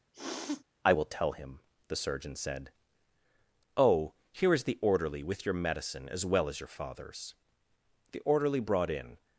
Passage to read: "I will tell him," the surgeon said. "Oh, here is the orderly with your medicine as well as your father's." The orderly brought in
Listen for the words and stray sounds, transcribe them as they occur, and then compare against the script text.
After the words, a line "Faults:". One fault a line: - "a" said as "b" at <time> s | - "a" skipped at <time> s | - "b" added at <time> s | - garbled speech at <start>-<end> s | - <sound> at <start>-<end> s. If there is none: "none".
"I will tell him," the surgeon said. "Oh, here is the orderly with your medicine as well as your father's." The orderly brought in
Faults:
- sniff at 0.1-0.6 s